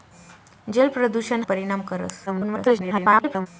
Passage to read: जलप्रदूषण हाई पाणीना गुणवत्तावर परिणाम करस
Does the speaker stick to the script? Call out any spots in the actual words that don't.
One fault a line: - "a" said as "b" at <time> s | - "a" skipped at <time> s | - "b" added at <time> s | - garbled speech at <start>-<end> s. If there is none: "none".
- "हाई पाणीना गुणवत्तावर" skipped at 1.4 s
- garbled speech at 2.3-3.5 s